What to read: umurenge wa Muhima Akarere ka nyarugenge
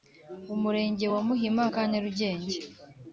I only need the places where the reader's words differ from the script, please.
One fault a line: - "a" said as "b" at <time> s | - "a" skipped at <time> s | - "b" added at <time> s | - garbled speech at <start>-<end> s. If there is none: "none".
- "Akarere" skipped at 1.6 s